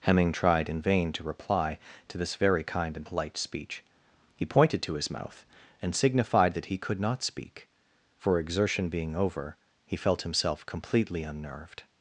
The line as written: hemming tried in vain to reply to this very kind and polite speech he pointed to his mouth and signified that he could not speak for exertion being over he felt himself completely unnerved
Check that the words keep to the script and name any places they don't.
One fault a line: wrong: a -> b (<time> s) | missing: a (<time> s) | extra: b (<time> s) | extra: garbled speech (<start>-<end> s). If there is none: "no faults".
no faults